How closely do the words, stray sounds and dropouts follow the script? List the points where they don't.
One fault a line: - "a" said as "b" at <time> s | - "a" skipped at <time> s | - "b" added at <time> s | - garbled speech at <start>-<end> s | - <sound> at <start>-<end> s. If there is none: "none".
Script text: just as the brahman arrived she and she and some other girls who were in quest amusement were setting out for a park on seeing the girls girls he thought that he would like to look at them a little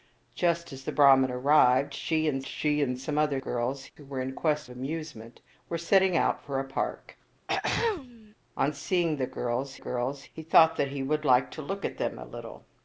- throat clearing at 7.5-8.3 s